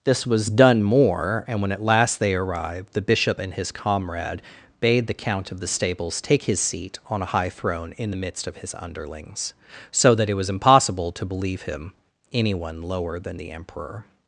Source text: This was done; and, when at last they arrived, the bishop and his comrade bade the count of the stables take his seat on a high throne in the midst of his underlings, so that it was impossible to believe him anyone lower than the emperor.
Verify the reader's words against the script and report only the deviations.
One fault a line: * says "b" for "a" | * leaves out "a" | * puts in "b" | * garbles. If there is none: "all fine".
* puts in "more"